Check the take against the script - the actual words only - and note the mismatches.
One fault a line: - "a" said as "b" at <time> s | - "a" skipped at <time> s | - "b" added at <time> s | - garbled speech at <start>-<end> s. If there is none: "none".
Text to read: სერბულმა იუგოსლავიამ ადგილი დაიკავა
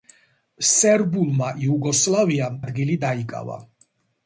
none